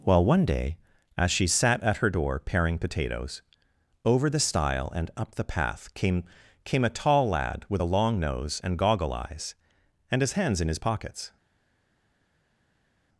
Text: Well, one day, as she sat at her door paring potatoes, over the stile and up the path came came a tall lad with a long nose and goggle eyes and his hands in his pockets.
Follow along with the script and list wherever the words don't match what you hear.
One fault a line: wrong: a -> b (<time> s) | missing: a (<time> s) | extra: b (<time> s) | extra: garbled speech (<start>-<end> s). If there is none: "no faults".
no faults